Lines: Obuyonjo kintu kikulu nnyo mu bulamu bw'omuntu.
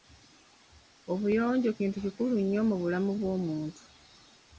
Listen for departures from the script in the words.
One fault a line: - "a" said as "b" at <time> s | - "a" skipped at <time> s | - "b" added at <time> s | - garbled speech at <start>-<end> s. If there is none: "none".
none